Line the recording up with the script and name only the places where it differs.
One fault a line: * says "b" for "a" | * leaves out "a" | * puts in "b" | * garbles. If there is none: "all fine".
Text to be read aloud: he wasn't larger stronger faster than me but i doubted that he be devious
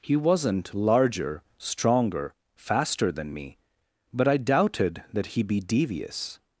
all fine